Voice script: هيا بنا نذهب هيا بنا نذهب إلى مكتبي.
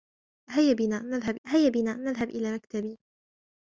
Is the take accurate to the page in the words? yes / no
yes